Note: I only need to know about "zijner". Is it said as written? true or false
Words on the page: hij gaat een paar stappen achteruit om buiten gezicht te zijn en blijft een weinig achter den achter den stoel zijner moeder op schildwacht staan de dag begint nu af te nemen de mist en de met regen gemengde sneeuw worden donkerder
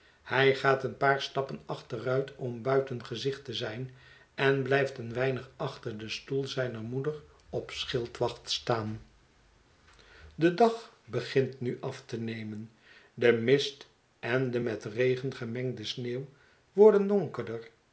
true